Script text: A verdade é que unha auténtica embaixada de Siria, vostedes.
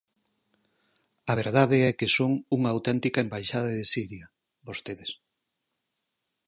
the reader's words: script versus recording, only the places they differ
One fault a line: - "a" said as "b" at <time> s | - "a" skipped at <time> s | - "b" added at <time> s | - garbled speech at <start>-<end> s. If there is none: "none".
- "son" added at 2.2 s